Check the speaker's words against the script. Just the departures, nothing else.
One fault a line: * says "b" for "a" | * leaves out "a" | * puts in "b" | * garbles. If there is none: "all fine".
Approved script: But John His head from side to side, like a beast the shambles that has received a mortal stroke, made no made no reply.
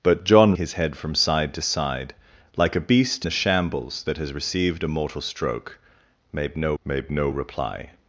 all fine